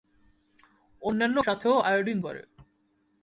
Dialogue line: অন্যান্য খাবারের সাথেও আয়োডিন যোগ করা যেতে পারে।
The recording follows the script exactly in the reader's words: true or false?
false